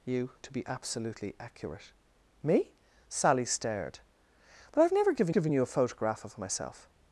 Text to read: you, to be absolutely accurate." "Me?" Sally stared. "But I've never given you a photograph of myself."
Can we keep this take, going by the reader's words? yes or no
no